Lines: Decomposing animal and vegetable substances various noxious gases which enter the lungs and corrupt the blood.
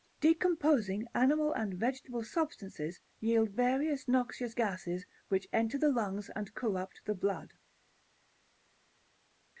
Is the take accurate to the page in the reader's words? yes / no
no